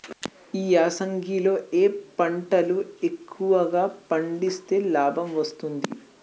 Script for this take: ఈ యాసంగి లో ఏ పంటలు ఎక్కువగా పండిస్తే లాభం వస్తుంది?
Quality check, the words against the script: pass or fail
pass